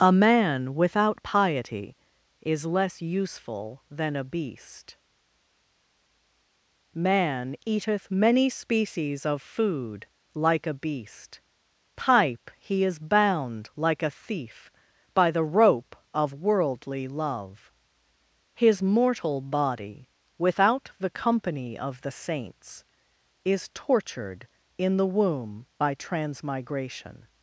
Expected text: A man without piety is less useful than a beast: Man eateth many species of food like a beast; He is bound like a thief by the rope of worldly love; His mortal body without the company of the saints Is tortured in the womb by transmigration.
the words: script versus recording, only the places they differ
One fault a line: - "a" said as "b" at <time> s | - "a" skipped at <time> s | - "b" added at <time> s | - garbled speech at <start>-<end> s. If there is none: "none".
- "pipe" added at 12.0 s